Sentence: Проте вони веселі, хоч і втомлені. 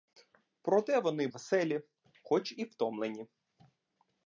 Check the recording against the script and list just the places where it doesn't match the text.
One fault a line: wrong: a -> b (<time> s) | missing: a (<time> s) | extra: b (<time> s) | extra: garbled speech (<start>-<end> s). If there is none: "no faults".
no faults